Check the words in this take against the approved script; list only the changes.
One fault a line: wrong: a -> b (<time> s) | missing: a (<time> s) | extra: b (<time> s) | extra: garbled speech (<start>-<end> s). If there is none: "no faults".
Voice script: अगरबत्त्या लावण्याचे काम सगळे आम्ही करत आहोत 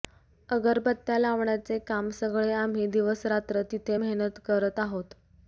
extra: दिवसरात्र तिथे मेहनत (2.9 s)